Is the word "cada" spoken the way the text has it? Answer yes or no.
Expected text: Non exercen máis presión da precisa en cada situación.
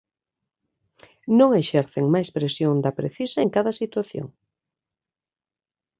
yes